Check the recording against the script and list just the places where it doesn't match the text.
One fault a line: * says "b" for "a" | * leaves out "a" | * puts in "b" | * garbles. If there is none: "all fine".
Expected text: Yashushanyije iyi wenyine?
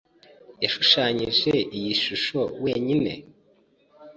* puts in "shusho"